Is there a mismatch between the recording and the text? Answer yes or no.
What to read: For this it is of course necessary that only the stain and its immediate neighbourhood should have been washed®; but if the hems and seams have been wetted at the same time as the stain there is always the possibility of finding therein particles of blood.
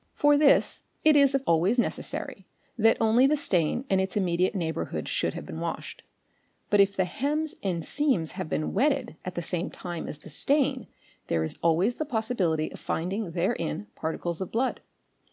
yes